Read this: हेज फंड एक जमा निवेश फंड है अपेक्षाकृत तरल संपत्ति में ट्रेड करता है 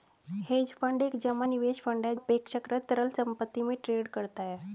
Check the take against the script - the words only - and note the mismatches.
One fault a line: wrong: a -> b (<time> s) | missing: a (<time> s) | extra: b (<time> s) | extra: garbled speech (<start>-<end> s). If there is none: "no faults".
no faults